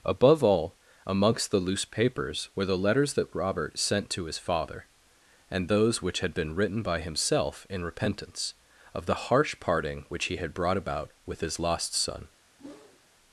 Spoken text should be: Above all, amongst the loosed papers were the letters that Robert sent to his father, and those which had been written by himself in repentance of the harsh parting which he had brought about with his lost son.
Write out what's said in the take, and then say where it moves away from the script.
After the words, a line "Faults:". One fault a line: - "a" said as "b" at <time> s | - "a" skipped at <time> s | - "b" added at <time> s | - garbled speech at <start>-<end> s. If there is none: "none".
Above all, amongst the loose papers were the letters that Robert sent to his father, and those which had been written by himself in repentance of the harsh parting which he had brought about with his lost son.
Faults:
- "loosed" said as "loose" at 1.6 s